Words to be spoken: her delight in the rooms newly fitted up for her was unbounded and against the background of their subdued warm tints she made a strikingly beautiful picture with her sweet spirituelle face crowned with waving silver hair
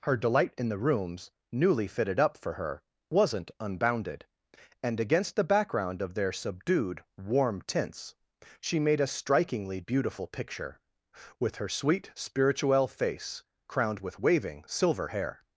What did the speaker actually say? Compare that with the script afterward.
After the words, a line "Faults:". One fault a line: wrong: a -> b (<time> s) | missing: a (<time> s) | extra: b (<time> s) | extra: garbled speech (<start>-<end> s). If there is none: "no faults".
her delight in the rooms newly fitted up for her wasn't unbounded and against the background of their subdued warm tints she made a strikingly beautiful picture with her sweet spirituelle face crowned with waving silver hair
Faults:
wrong: was -> wasn't (3.1 s)